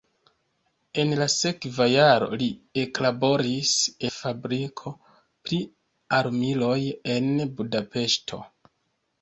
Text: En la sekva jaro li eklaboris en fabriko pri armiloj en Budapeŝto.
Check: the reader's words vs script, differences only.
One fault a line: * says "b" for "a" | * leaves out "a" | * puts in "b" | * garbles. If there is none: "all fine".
* leaves out "en"